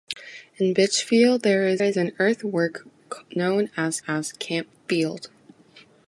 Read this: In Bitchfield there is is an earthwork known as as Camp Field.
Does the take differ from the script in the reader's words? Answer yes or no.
no